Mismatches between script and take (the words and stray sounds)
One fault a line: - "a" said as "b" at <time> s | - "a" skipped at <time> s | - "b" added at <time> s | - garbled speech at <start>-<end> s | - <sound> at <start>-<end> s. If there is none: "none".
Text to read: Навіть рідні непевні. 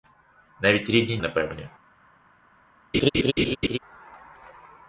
- laugh at 2.9-3.8 s